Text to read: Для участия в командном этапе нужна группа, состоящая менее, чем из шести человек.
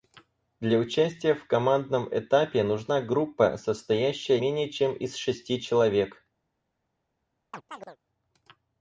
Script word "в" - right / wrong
right